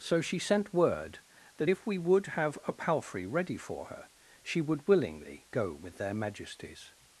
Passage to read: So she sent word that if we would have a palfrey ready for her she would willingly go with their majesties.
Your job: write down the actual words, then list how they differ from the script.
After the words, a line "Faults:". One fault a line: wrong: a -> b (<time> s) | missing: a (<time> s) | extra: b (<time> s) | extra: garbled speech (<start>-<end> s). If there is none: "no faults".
So she sent word that if we would have a palfrey ready for her she would willingly go with their majesties.
Faults:
no faults